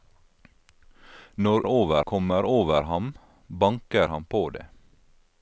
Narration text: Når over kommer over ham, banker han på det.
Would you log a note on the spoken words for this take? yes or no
no